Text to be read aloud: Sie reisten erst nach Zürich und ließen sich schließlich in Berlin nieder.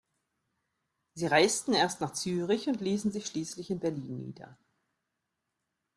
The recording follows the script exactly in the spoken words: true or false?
true